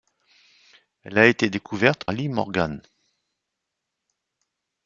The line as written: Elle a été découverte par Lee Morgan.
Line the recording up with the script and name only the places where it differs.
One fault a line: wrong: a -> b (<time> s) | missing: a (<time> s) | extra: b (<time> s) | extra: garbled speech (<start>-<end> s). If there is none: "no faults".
missing: par (2.0 s)